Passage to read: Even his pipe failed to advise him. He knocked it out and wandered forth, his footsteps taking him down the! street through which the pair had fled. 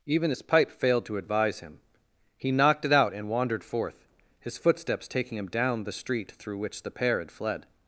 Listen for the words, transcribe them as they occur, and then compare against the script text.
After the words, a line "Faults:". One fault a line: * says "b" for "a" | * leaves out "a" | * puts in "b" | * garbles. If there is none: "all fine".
Even his pipe failed to advise him. He knocked it out and wandered forth, his footsteps taking him down the! street through which the pair had fled.
Faults:
all fine